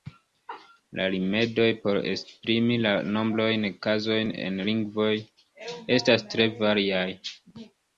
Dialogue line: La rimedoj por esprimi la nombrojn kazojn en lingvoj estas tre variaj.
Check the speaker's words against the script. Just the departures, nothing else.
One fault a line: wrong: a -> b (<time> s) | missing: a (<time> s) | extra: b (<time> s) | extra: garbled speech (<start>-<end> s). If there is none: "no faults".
no faults